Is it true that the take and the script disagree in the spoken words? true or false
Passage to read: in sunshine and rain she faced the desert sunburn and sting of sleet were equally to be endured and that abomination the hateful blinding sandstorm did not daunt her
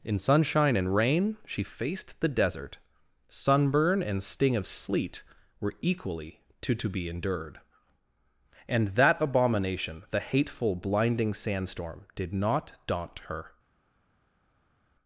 true